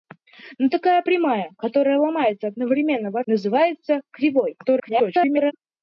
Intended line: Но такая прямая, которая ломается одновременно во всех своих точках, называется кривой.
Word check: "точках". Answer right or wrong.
wrong